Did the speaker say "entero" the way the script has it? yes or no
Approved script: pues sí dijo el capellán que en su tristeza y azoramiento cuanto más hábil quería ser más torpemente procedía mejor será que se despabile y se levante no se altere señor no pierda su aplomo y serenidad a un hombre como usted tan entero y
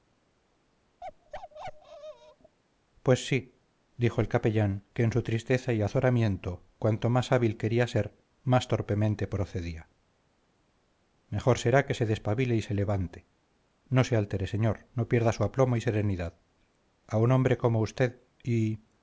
no